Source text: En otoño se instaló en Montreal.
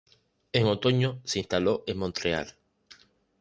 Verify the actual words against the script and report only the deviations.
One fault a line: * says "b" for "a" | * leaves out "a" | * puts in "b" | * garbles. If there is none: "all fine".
all fine